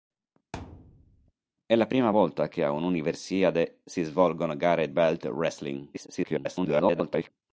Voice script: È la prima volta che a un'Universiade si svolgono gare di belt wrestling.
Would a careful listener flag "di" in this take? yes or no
yes